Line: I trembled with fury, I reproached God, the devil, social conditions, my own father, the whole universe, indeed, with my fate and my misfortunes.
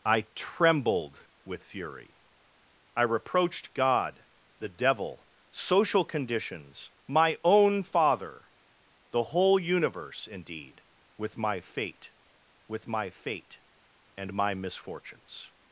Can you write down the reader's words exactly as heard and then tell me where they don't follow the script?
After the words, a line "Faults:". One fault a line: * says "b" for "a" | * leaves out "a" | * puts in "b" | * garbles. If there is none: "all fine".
I trembled with fury, I reproached God, the devil, social conditions, my own father, the whole universe, indeed, with my fate with my fate and my misfortunes.
Faults:
* puts in "with my fate"